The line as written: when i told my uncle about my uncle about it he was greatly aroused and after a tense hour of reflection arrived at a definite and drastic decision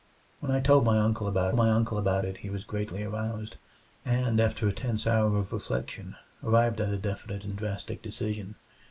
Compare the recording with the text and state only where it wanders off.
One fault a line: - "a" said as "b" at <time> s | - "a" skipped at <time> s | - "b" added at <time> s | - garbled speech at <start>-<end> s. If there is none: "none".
none